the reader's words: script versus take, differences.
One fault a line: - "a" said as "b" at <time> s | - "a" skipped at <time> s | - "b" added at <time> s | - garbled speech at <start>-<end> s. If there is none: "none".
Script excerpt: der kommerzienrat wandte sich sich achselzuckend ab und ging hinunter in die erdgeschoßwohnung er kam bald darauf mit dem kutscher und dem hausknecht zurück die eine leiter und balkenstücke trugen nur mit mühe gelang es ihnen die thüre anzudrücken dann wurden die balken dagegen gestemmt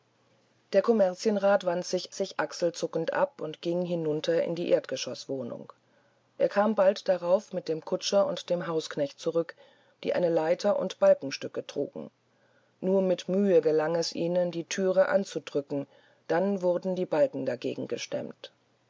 none